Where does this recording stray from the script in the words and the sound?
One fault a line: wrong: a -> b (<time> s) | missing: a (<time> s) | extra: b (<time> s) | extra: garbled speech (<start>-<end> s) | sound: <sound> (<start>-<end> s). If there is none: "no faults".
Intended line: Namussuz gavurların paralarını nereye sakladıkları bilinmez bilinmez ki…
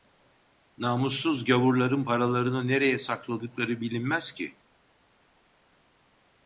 missing: bilinmez (4.3 s)